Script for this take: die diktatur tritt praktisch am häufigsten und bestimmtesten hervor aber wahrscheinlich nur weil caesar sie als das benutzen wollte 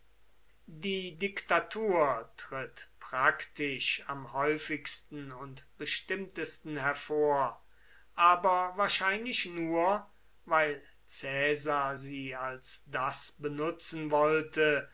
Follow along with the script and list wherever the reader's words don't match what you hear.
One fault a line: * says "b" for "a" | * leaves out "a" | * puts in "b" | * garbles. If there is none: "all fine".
all fine